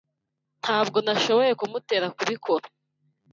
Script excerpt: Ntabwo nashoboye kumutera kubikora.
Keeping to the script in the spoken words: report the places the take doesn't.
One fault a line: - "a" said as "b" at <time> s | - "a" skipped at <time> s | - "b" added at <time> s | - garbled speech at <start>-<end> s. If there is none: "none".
none